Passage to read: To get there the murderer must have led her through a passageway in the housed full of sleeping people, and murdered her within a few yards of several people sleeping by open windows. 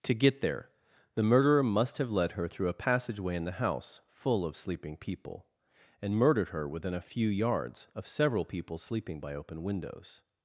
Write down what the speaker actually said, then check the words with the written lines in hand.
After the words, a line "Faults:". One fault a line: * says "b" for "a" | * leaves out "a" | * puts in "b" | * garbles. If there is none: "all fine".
To get there the murderer must have led her through a passageway in the house full of sleeping people, and murdered her within a few yards of several people sleeping by open windows.
Faults:
* says "house" for "housed"